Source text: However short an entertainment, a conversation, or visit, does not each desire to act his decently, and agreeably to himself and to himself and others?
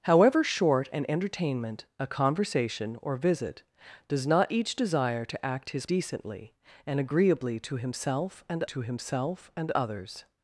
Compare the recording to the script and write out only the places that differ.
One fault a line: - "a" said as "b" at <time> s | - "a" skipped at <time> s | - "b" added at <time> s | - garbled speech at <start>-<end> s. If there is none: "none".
none